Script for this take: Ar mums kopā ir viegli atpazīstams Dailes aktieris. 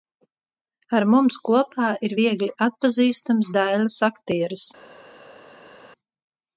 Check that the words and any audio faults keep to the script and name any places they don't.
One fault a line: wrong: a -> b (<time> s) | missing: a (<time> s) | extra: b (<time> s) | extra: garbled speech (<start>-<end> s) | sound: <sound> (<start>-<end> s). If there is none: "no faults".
no faults